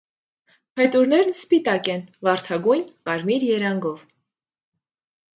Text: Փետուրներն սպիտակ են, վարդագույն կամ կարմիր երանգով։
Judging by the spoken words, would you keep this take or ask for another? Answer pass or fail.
fail